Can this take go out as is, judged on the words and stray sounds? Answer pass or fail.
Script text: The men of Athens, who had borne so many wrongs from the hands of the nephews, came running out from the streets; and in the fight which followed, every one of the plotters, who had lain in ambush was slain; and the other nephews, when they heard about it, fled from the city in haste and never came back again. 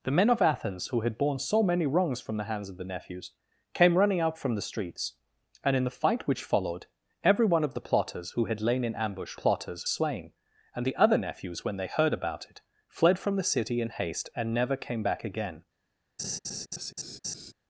fail